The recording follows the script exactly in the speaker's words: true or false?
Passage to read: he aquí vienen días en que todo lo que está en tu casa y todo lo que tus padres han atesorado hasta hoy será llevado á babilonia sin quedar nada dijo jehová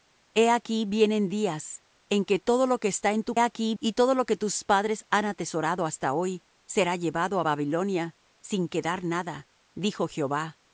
false